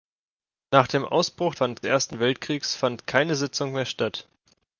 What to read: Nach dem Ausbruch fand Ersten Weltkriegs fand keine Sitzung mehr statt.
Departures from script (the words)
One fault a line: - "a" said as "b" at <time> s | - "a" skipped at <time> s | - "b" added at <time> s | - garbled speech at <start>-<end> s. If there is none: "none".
none